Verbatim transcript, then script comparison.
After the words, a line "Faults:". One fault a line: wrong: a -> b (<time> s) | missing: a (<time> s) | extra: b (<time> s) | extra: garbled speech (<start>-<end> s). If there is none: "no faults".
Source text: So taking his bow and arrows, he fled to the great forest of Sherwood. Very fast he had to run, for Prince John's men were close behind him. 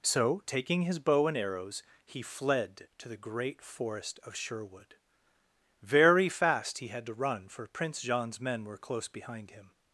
So taking his bow and arrows, he fled to the great forest of Sherwood. Very fast he had to run, for Prince John's men were close behind him.
Faults:
no faults